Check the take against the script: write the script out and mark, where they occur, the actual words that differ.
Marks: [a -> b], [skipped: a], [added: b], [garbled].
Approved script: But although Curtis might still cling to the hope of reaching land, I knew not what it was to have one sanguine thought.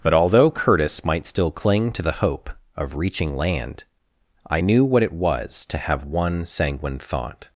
But although Curtis might still cling to the hope of reaching land, I knew [skipped: not] what it was to have one sanguine thought.